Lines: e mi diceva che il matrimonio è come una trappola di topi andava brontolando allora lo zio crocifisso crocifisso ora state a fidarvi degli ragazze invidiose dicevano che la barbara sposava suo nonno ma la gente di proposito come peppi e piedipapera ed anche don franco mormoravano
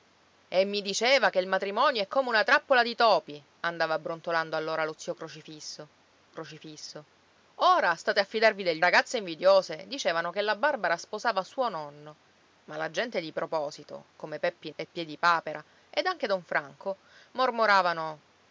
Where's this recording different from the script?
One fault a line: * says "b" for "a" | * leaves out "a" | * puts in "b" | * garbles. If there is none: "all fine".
all fine